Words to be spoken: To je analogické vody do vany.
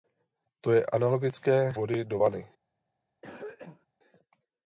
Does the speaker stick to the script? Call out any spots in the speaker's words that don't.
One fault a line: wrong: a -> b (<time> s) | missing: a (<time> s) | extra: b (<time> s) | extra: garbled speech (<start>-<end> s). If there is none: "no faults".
no faults